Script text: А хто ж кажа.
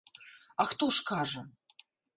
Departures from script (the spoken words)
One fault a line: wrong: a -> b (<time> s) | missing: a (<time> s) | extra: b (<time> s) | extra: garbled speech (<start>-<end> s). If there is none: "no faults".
no faults